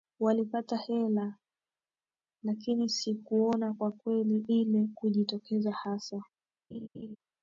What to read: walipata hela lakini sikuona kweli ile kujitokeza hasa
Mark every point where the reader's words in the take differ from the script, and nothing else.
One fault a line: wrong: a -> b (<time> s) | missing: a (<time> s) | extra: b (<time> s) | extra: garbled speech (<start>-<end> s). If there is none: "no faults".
extra: kwa (3.7 s)